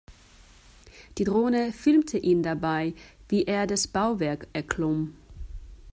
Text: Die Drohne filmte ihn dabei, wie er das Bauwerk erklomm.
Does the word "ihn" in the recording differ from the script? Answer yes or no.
no